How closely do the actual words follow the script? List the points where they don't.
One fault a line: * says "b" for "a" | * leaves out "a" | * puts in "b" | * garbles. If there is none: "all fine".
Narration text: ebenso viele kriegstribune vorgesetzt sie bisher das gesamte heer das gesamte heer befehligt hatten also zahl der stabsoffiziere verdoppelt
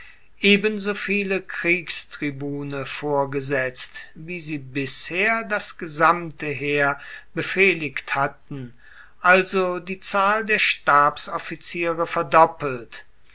* puts in "wie"
* leaves out "das gesamte heer"
* puts in "die"